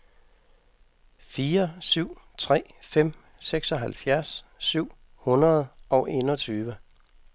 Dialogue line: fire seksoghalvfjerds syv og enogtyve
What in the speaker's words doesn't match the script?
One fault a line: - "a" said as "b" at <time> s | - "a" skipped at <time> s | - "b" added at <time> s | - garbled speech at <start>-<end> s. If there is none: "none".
- "syv tre fem" added at 1.8 s
- "hundrede" added at 5.2 s